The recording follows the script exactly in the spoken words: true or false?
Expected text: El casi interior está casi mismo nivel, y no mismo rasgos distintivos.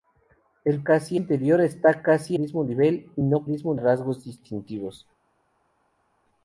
true